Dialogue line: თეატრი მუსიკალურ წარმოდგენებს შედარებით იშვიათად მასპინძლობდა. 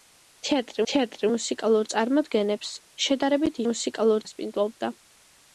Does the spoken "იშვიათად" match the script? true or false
false